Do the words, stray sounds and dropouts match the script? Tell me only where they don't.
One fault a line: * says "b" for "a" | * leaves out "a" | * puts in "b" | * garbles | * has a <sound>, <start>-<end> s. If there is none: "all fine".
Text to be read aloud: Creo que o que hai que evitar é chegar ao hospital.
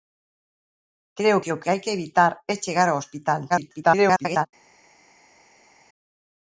* garbles